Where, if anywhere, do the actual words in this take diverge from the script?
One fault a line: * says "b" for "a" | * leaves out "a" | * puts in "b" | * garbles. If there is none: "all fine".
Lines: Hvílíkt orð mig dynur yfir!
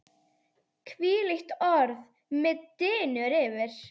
all fine